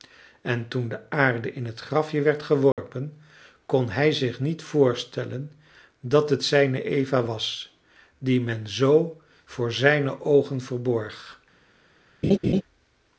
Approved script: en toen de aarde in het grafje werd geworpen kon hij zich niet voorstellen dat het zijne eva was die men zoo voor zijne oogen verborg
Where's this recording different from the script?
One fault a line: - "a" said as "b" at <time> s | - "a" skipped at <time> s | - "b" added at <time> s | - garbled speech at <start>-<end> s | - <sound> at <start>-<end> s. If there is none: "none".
- dropout at 2.7-2.8 s
- laugh at 12.2-12.6 s